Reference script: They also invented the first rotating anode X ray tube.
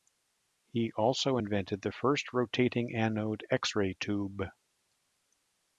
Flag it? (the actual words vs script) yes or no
yes